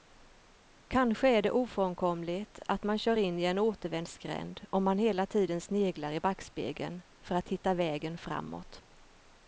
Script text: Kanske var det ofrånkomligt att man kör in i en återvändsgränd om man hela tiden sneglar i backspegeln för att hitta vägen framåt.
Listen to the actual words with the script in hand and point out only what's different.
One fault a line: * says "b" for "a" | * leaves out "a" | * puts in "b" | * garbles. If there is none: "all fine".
* says "är" for "var"